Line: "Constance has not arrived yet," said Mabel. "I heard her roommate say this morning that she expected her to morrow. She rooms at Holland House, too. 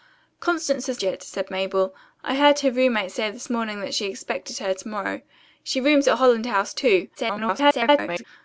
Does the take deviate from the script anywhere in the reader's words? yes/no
yes